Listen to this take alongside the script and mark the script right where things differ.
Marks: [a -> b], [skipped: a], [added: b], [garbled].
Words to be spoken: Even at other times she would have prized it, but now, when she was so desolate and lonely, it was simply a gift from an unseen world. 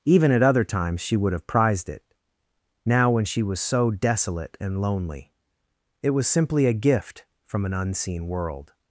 Even at other times she would have prized it, [skipped: but] now, when she was so desolate and lonely, it was simply a gift from an unseen world.